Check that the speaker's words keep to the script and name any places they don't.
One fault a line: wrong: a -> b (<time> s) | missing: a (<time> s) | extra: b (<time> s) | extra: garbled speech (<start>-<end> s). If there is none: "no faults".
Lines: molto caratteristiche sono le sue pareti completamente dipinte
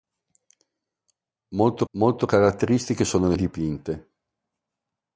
extra: molto (1.9 s)
missing: sue pareti completamente (3.4 s)